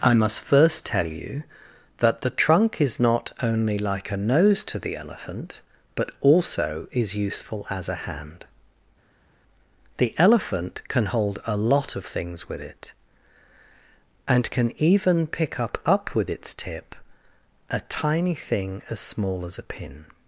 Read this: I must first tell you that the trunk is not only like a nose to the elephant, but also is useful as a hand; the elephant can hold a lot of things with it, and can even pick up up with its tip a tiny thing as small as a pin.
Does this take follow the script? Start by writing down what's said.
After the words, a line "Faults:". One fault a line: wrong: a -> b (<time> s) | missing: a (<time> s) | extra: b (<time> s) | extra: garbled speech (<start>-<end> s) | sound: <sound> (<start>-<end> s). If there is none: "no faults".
I must first tell you that the trunk is not only like a nose to the elephant, but also is useful as a hand; the elephant can hold a lot of things with it, and can even pick up up with its tip a tiny thing as small as a pin.
Faults:
no faults